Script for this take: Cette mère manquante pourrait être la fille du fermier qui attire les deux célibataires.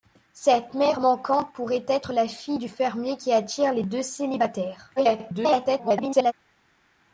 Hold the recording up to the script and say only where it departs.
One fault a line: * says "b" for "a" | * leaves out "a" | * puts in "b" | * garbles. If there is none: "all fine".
* garbles